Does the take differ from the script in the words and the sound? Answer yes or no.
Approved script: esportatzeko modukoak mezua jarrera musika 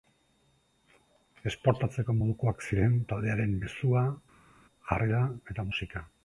yes